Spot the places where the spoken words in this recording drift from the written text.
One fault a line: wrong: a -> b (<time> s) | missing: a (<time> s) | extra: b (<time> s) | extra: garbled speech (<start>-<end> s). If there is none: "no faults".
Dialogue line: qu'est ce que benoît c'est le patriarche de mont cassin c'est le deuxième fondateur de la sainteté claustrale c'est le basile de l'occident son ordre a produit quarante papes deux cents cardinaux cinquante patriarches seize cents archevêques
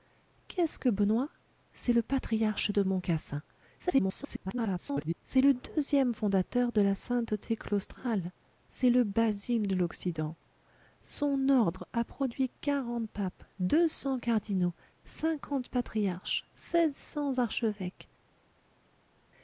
extra: garbled speech (3.8-5.2 s)